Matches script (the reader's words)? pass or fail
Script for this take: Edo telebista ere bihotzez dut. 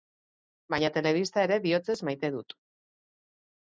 fail